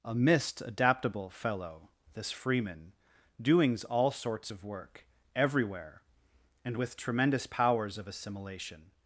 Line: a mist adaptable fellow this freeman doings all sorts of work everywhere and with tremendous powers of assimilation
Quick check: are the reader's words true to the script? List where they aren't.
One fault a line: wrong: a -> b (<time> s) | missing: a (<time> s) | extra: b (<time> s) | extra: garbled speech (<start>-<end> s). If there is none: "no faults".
no faults